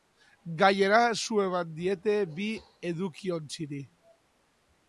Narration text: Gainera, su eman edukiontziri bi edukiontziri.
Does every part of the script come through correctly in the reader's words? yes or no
no